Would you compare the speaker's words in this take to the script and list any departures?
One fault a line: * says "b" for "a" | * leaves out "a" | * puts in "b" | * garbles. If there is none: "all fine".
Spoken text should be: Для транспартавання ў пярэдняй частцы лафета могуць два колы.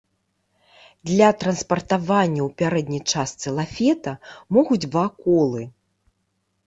all fine